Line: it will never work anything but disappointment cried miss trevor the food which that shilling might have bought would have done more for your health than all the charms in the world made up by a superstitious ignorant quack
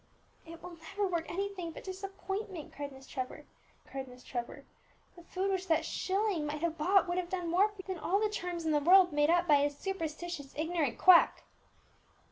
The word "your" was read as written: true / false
false